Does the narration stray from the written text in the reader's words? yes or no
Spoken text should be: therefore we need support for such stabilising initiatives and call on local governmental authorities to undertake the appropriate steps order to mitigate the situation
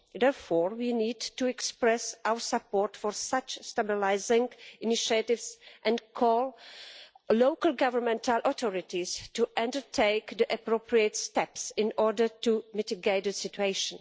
yes